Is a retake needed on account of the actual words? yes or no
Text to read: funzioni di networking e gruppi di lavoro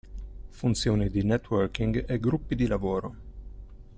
no